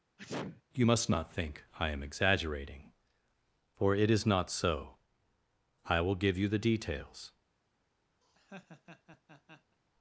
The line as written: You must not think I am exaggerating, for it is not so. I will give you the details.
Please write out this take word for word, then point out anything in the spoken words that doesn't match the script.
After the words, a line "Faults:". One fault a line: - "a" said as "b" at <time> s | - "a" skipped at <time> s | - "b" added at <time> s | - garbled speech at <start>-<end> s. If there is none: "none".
You must not think I am exaggerating, for it is not so. I will give you the details.
Faults:
none